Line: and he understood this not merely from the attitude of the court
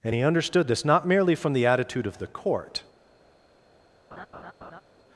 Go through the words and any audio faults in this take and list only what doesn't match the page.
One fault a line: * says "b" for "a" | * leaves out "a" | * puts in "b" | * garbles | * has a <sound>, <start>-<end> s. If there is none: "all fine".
* has a laugh, 4.1-4.8 s